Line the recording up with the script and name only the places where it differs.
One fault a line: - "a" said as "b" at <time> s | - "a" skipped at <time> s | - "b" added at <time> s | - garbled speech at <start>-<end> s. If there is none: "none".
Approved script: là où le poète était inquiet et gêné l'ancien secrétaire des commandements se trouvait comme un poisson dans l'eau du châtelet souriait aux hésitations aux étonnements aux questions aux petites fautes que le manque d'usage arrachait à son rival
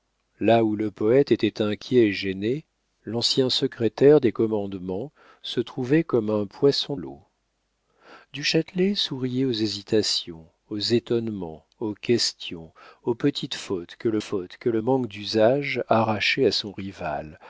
- "dans" skipped at 7.0 s
- "fautes que le" added at 14.2 s